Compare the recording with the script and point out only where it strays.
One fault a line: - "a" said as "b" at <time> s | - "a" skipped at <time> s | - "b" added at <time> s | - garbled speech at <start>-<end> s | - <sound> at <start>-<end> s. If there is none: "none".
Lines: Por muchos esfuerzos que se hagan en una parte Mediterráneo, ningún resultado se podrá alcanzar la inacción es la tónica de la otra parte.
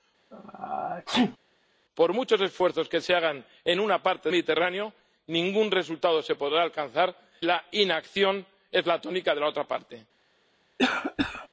- sneeze at 0.3-1.4 s
- cough at 10.8-11.5 s